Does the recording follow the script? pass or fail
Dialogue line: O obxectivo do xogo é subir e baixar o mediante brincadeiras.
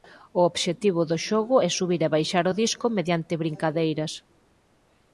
fail